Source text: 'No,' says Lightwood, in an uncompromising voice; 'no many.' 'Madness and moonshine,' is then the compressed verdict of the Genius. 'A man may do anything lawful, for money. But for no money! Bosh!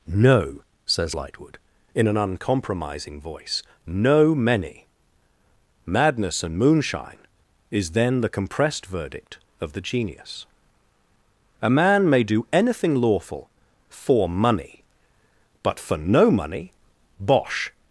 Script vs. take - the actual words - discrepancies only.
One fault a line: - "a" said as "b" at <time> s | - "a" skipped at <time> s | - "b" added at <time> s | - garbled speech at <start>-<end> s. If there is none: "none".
none